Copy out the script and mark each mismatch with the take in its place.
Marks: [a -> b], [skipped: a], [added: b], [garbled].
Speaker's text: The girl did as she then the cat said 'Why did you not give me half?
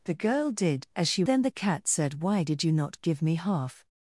The girl did as she then the cat said 'Why did you not give me half?